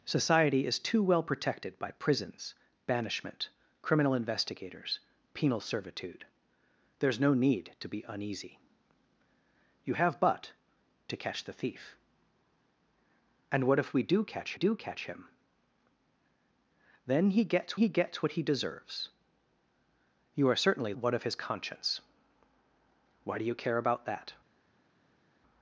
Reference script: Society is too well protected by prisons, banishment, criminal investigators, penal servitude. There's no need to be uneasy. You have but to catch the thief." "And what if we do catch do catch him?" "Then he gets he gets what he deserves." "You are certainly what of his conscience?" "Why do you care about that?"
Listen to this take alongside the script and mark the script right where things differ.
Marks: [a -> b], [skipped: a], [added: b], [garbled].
Society is too well protected by prisons, banishment, criminal investigators, penal servitude. There's no need to be uneasy. You have but to catch the thief." "And what if we do catch do catch him?" "Then he gets he gets what he deserves." "You are certainly what of his conscience?" "Why do you care about that?"